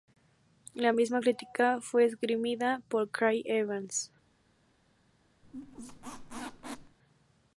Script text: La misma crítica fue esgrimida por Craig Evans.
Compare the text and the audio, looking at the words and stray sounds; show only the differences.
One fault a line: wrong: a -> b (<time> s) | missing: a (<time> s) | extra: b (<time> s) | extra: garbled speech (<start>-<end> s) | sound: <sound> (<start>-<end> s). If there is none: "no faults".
sound: squeak (5.4-7.0 s)